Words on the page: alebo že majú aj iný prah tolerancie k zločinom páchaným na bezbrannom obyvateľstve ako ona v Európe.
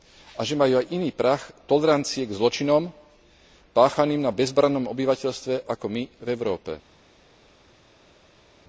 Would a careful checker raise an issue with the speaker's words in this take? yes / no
yes